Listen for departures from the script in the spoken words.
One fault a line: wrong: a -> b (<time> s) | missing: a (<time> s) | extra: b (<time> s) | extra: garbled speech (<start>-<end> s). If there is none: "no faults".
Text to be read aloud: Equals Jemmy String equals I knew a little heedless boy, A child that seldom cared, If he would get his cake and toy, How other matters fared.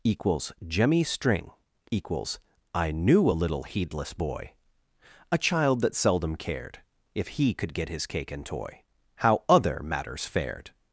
wrong: would -> could (7.5 s)